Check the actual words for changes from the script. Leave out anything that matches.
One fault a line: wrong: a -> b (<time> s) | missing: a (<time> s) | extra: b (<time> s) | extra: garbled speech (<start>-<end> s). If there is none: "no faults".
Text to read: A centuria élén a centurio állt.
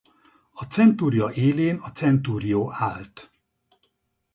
no faults